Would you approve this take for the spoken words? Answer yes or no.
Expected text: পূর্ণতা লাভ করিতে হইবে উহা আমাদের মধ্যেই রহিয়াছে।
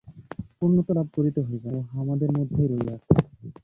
yes